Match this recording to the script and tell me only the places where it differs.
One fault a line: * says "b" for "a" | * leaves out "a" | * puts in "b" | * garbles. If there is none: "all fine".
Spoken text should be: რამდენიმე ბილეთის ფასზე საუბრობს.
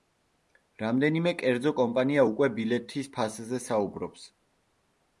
* puts in "კერძო კომპანია უკვე"